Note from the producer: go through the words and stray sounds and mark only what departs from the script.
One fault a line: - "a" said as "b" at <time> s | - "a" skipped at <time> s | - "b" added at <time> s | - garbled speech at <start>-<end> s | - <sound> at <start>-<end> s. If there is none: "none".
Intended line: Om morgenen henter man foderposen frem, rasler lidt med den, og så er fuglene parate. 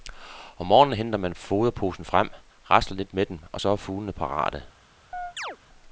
- chirp at 5.1-5.6 s